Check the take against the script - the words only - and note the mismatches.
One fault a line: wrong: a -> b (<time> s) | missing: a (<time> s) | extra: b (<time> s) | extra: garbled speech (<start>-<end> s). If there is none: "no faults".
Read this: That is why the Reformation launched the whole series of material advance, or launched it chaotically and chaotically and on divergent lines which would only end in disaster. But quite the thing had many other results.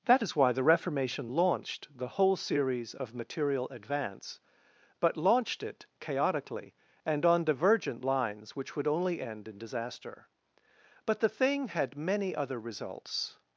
wrong: or -> but (5.0 s)
missing: chaotically and (7.3 s)
missing: quite (11.2 s)